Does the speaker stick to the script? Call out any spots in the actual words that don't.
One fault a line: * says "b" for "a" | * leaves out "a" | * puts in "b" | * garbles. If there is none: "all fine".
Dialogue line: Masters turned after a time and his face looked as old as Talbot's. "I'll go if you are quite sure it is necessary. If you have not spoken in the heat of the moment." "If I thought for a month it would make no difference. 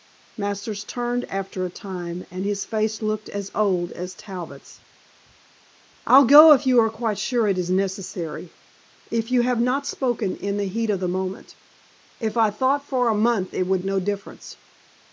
* leaves out "make"